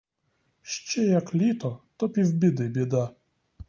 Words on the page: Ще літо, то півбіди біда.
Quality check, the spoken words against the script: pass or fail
fail